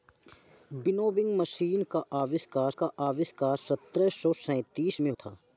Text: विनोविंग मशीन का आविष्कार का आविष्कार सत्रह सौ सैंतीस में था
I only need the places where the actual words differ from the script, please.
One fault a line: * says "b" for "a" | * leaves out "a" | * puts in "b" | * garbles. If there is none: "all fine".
all fine